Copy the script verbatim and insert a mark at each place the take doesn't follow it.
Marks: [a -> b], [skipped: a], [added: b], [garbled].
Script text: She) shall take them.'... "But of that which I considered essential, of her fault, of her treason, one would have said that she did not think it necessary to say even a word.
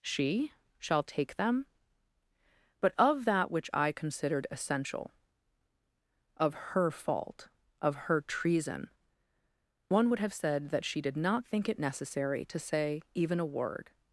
She) shall take them.'... "But of that which I considered essential, of her fault, of her treason, one would have said that she did not think it necessary to say even a word.